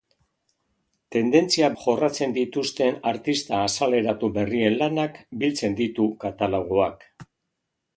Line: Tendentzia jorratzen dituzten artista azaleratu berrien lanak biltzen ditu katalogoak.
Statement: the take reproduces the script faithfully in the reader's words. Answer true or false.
true